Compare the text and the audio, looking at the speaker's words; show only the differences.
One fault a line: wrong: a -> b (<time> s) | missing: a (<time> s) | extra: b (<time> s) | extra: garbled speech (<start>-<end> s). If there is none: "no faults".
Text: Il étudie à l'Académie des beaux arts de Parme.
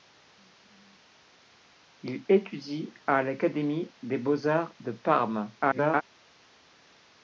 extra: garbled speech (5.6-6.0 s)